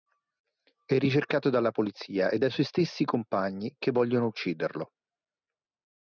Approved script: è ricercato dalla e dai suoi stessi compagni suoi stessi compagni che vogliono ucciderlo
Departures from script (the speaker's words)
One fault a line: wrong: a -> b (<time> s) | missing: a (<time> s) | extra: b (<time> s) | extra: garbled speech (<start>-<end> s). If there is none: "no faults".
extra: polizia (1.7 s)
missing: suoi stessi compagni (3.8 s)